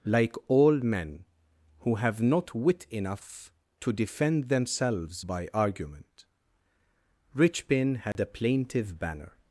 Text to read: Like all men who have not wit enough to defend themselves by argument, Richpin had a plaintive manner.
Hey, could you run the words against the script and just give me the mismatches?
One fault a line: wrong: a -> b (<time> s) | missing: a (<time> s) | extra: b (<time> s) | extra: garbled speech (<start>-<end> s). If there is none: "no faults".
wrong: manner -> banner (9.0 s)